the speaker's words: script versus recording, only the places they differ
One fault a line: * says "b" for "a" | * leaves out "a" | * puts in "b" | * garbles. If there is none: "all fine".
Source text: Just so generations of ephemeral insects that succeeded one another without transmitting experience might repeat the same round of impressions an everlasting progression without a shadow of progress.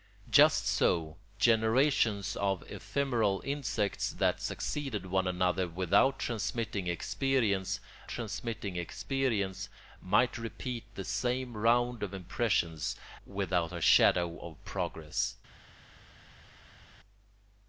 * puts in "transmitting experience"
* leaves out "an everlasting progression"